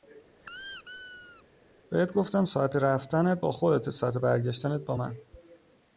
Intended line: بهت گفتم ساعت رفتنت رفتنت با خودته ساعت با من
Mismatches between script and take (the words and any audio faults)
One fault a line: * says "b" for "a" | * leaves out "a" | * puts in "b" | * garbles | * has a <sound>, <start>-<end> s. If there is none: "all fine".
* has a squeak, 0.4-1.4 s
* leaves out "رفتنت"
* puts in "برگشتنت"